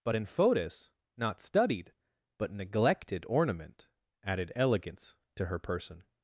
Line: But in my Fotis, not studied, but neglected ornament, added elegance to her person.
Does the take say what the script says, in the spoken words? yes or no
no